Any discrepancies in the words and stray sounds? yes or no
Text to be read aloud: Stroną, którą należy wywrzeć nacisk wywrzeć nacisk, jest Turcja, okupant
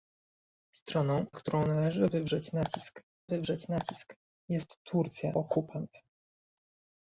no